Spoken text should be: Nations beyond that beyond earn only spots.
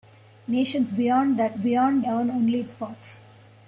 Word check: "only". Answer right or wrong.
right